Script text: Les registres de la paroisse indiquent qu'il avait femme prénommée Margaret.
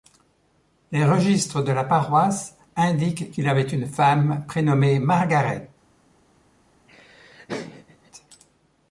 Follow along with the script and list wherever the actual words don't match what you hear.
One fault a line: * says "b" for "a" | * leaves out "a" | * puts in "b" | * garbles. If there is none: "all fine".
* puts in "une"